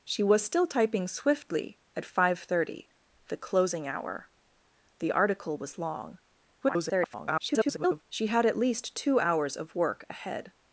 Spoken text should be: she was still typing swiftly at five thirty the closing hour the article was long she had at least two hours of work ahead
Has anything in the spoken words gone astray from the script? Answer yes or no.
yes